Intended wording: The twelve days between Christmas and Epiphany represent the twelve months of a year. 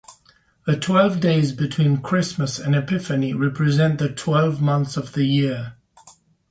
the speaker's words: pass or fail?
fail